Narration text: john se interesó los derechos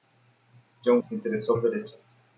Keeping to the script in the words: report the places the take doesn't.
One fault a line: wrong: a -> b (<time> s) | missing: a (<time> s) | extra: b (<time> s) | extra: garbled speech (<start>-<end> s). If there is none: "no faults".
no faults